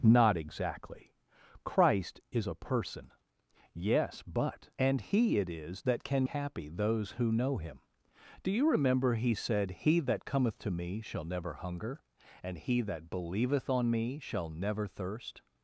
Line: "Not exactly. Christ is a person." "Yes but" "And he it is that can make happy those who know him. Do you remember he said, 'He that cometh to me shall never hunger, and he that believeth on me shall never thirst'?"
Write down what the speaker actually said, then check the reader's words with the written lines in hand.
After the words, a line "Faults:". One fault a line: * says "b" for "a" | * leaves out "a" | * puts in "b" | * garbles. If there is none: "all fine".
"Not exactly. Christ is a person." "Yes but" "And he it is that can happy those who know him. Do you remember he said, 'He that cometh to me shall never hunger, and he that believeth on me shall never thirst'?"
Faults:
* leaves out "make"